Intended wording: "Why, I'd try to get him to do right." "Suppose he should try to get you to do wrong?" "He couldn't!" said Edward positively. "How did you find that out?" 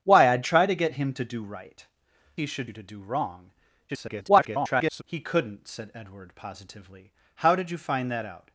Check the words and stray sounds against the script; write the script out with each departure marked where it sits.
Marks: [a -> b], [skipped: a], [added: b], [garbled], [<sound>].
"Why, I'd try to get him to do right." [skipped: "Suppose] he should [skipped: try to get] you to do wrong?" [garbled] "He couldn't!" said Edward positively. "How did you find that out?"